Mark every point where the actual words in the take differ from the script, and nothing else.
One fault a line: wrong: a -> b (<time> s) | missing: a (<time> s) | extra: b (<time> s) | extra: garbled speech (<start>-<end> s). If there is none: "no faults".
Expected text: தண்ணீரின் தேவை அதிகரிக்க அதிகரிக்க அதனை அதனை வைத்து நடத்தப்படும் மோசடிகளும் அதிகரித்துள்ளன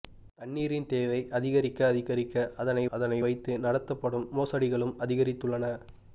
no faults